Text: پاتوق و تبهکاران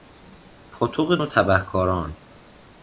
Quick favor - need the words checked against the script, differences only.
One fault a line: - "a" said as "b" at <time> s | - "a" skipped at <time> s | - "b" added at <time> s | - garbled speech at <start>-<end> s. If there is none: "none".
none